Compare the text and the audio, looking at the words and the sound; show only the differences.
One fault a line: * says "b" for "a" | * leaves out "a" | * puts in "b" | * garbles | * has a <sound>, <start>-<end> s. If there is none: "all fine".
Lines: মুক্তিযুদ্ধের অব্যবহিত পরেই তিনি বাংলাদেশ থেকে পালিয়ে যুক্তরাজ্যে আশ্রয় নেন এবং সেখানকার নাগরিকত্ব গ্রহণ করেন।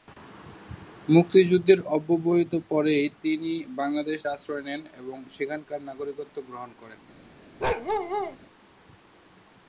* leaves out "থেকে পালিয়ে যুক্তরাজ্যে"
* has a bark, 7.6-8.4 s